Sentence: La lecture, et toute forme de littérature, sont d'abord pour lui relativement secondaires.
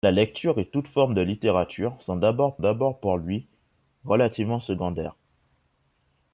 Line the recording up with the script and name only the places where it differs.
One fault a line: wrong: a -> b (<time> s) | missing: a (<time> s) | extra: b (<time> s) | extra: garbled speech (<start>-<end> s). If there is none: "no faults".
extra: d'abord (2.6 s)